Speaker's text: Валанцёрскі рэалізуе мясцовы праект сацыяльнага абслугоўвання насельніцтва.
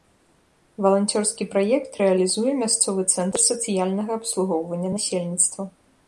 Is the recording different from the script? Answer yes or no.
yes